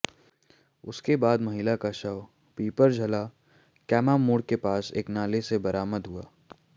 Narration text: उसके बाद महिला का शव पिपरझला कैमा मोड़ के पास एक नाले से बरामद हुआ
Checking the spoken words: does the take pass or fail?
pass